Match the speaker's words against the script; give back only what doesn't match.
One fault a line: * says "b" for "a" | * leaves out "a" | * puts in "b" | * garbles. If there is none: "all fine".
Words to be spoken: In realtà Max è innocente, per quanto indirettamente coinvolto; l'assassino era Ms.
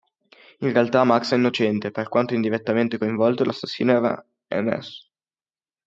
all fine